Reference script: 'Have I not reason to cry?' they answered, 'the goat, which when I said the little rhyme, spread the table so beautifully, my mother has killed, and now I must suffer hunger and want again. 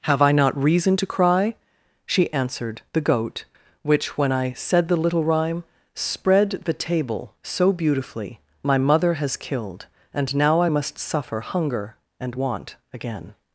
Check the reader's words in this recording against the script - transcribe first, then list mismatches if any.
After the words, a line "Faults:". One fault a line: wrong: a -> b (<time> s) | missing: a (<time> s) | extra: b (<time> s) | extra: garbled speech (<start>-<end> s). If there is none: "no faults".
'Have I not reason to cry?' she answered, 'the goat, which when I said the little rhyme, spread the table so beautifully, my mother has killed, and now I must suffer hunger and want again.
Faults:
wrong: they -> she (2.0 s)